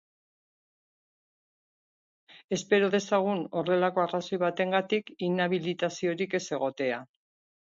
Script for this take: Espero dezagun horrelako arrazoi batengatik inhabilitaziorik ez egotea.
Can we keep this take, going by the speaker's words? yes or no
yes